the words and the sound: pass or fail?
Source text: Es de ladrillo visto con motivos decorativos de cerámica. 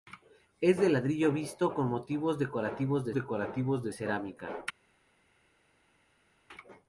fail